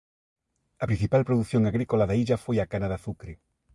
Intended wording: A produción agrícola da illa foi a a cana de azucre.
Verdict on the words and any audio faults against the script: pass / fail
fail